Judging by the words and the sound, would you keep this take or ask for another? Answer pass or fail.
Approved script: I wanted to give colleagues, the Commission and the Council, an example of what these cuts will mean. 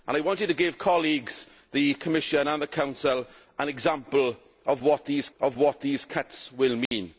fail